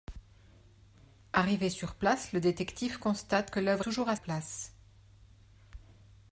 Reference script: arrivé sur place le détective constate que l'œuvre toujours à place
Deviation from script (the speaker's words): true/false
false